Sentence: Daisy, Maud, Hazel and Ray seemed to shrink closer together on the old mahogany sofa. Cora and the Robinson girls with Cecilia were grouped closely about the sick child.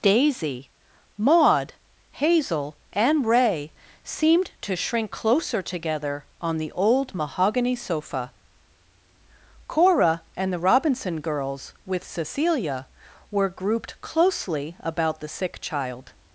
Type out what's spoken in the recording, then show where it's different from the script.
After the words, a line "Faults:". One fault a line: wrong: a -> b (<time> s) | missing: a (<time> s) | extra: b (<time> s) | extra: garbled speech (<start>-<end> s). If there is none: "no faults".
Daisy, Maud, Hazel and Ray seemed to shrink closer together on the old mahogany sofa. Cora and the Robinson girls with Cecilia were grouped closely about the sick child.
Faults:
no faults